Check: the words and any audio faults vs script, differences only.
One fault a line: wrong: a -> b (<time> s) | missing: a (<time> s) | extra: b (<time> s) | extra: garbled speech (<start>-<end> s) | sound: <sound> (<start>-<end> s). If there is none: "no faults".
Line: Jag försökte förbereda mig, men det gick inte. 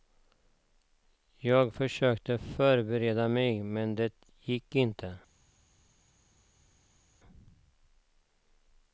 no faults